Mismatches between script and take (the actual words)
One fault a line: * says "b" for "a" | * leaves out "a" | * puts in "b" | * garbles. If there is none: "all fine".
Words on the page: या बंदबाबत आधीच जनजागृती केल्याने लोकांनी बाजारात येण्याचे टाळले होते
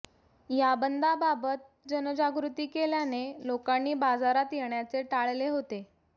* leaves out "आधीच"